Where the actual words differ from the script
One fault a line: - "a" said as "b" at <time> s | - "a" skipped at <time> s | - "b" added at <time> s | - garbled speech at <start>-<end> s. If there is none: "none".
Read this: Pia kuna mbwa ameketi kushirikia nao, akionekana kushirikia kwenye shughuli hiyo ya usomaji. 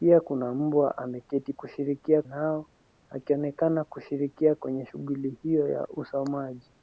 none